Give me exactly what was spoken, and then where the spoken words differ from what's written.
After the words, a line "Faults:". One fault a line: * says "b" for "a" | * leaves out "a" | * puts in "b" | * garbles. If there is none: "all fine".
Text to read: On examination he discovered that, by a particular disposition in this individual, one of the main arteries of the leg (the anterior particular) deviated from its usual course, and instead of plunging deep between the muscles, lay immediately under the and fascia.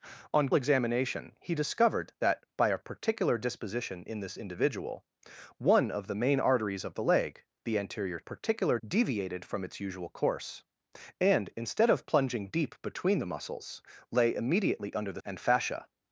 On examination he discovered that, by a particular disposition in this individual, one of the main arteries of the leg (the anterior particular) deviated from its usual course, and instead of plunging deep between the muscles, lay immediately under the and fascia.
Faults:
all fine